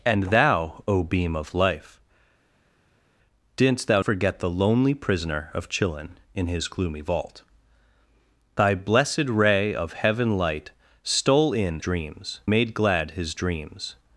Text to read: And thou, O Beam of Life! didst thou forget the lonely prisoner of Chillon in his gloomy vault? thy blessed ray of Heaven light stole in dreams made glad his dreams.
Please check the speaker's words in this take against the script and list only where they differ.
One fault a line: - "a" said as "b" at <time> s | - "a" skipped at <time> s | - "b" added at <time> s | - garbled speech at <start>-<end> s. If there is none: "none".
none